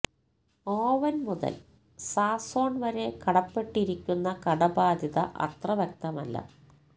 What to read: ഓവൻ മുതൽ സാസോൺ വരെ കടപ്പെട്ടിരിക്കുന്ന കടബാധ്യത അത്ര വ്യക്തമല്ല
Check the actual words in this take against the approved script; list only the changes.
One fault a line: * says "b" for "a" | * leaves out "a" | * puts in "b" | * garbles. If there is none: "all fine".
all fine